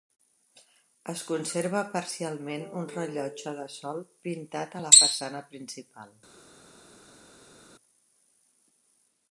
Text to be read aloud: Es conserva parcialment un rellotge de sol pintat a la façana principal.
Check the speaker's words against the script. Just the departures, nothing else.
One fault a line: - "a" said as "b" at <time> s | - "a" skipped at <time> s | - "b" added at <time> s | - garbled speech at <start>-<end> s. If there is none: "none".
none